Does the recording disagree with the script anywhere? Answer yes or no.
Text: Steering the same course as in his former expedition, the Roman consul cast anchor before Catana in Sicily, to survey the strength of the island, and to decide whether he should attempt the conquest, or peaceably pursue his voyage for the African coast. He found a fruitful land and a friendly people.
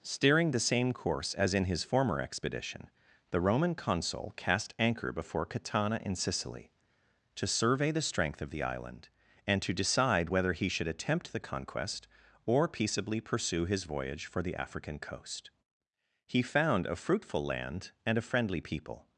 no